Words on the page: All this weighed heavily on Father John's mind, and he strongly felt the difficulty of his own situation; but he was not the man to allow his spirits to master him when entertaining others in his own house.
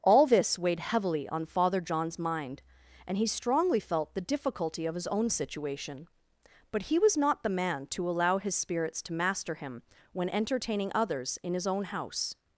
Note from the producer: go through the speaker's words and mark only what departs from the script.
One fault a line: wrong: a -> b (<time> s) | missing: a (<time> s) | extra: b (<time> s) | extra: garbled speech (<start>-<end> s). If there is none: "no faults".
no faults